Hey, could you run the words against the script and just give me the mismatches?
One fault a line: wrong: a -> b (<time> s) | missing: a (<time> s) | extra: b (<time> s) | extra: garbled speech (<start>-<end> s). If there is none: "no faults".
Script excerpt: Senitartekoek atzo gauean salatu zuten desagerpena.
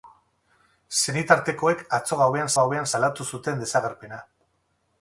extra: gauean (2.6 s)